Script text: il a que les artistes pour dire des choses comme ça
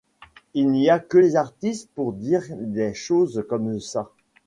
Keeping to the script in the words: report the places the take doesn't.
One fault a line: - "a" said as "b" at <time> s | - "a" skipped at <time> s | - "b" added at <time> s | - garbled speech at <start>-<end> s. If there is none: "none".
- "n'y" added at 0.7 s